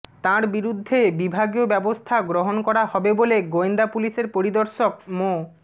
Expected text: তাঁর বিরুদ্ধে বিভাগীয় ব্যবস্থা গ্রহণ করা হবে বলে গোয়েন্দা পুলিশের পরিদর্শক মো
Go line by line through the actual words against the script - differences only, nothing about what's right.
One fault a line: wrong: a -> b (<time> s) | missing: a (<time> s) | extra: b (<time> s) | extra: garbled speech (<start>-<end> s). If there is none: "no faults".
no faults